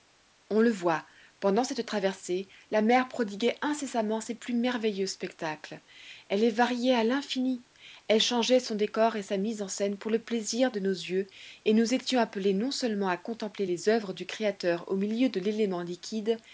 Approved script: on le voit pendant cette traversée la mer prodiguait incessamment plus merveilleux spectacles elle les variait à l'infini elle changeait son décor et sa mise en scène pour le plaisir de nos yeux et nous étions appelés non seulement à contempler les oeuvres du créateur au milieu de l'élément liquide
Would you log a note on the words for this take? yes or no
yes